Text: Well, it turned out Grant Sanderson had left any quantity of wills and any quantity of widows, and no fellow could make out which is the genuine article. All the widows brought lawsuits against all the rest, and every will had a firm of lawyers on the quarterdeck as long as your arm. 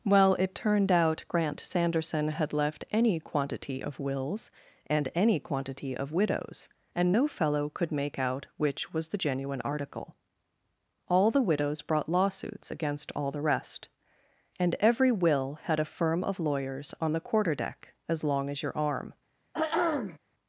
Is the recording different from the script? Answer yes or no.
yes